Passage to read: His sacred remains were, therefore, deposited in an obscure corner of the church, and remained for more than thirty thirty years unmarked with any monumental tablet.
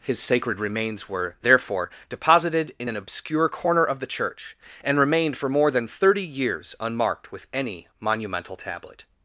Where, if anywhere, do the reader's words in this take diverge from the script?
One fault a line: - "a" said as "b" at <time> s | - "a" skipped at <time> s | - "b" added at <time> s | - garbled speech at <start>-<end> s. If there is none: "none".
- "thirty" skipped at 6.3 s